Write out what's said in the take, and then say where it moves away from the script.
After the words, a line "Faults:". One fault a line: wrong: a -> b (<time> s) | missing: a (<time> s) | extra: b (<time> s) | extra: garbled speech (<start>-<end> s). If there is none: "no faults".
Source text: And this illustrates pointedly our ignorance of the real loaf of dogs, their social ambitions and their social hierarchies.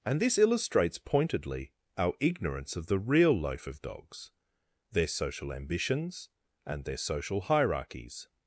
And this illustrates pointedly our ignorance of the real loaf of dogs, their social ambitions and their social hierarchies.
Faults:
no faults